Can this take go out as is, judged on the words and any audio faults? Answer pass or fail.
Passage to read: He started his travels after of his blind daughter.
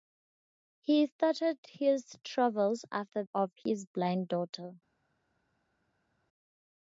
pass